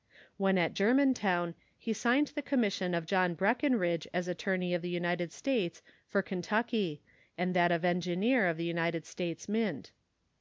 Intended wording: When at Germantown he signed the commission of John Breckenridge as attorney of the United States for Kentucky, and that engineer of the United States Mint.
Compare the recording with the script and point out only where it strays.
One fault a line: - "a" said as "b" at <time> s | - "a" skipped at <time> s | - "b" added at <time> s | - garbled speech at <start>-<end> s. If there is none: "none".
- "of" added at 7.7 s